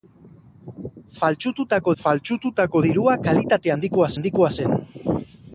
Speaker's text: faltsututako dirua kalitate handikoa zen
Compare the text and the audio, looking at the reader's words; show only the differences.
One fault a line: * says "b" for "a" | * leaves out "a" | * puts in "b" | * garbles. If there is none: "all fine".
* puts in "faltsututako"
* puts in "handikoa"